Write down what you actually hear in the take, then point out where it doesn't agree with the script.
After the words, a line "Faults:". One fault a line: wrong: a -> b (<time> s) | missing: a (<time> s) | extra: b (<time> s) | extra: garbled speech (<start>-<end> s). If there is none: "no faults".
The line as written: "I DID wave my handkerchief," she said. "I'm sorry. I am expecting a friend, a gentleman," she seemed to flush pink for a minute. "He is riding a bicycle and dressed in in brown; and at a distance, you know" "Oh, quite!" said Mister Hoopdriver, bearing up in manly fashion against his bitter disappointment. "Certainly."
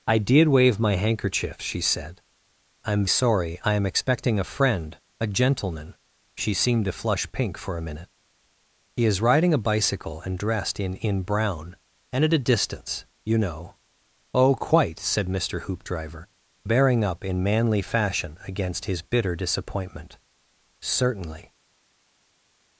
"I DID wave my handkerchief," she said. "I'm sorry. I am expecting a friend, a gentleman," she seemed to flush pink for a minute. "He is riding a bicycle and dressed in in brown; and at a distance, you know" "Oh, quite!" said Mister Hoopdriver, bearing up in manly fashion against his bitter disappointment. "Certainly."
Faults:
no faults